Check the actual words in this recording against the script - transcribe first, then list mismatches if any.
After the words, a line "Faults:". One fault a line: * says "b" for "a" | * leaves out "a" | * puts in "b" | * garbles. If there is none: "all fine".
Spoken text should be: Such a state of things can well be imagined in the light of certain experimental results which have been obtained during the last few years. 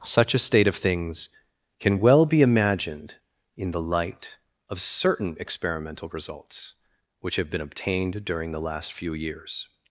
Such a state of things can well be imagined in the light of certain experimental results which have been obtained during the last few years.
Faults:
all fine